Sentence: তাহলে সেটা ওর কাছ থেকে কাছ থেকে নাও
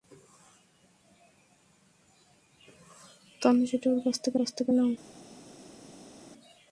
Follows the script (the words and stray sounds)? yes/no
yes